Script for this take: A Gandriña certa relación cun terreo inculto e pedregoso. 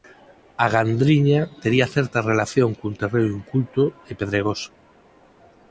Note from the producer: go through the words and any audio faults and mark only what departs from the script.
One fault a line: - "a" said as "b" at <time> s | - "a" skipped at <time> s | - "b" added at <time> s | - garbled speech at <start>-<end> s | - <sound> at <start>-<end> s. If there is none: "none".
- "tería" added at 1.6 s